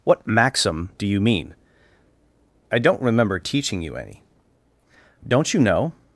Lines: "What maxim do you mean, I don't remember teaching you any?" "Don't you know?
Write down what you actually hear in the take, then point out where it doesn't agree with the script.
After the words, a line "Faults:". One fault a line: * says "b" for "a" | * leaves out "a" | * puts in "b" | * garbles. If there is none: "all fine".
"What maxim do you mean, I don't remember teaching you any?" "Don't you know?
Faults:
all fine